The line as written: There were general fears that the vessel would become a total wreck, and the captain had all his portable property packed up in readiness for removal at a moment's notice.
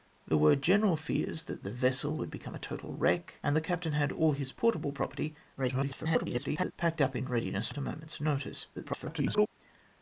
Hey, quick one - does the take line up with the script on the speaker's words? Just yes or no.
no